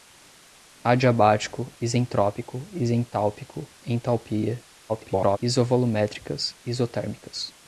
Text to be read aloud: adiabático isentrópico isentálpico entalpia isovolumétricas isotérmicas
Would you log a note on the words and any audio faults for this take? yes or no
yes